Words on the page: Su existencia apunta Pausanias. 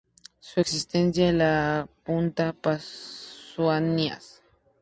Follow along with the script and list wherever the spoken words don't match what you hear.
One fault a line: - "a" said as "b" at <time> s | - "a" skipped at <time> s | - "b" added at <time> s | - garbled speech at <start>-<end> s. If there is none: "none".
- "la" added at 1.3 s